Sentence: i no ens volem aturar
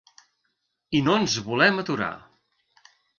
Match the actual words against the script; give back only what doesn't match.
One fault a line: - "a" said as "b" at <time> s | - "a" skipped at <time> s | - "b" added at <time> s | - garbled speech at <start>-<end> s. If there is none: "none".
none